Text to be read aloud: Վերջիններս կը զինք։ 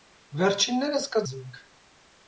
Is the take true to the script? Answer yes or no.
yes